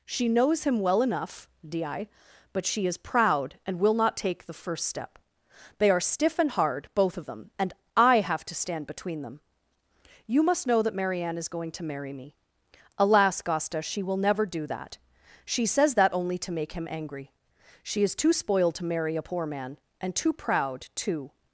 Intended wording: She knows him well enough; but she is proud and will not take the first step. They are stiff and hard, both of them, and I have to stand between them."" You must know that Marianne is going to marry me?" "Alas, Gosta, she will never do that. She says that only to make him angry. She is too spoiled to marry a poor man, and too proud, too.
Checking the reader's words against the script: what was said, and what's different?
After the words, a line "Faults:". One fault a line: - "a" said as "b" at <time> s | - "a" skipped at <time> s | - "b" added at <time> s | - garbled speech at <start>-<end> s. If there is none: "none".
She knows him well enough; di but she is proud and will not take the first step. They are stiff and hard, both of them, and I have to stand between them."" You must know that Marianne is going to marry me?" "Alas, Gosta, she will never do that. She says that only to make him angry. She is too spoiled to marry a poor man, and too proud, too.
Faults:
- "di" added at 1.7 s